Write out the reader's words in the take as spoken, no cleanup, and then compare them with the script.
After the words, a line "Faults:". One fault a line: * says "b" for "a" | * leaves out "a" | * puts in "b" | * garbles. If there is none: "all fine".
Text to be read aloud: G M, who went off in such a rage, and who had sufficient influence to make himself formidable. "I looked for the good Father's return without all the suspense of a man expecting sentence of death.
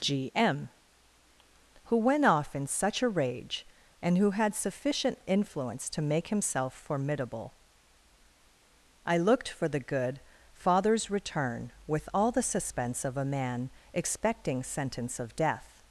G M, who went off in such a rage, and who had sufficient influence to make himself formidable. "I looked for the good Father's return with all the suspense of a man expecting sentence of death.
Faults:
* says "with" for "without"